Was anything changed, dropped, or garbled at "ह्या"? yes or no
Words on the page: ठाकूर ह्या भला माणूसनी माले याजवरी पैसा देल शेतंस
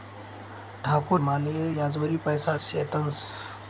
yes